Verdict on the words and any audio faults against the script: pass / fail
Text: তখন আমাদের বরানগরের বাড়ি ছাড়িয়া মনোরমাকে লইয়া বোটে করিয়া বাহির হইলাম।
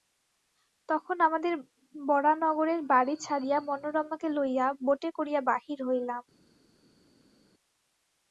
pass